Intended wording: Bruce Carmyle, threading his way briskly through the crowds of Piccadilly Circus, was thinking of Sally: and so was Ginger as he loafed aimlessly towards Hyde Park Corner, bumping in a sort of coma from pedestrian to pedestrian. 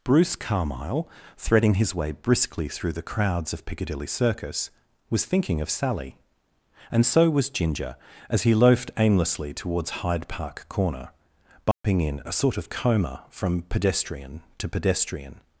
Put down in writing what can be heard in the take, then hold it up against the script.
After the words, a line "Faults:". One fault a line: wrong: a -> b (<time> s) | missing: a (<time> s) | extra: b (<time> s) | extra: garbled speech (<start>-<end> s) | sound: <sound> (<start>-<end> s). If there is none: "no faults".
Bruce Carmyle, threading his way briskly through the crowds of Piccadilly Circus, was thinking of Sally: and so was Ginger as he loafed aimlessly towards Hyde Park Corner, bumping in a sort of coma from pedestrian to pedestrian.
Faults:
sound: dropout (11.7-11.8 s)